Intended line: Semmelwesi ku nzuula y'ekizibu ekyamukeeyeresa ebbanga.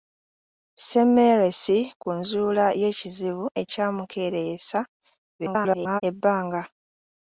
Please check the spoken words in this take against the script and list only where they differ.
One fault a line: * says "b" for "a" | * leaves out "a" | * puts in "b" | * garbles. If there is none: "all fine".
* garbles